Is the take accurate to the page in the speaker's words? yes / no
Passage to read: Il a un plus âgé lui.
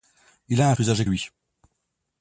yes